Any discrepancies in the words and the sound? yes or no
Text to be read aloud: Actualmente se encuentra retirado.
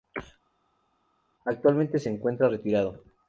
no